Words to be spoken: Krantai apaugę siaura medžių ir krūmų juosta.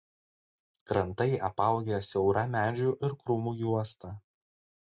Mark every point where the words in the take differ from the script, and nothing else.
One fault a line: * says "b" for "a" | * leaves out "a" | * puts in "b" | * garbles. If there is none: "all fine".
all fine